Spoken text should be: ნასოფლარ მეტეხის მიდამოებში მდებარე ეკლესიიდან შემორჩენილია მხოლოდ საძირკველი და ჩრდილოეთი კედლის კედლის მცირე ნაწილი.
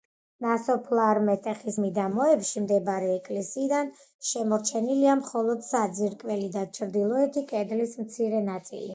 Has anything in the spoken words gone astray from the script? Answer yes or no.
yes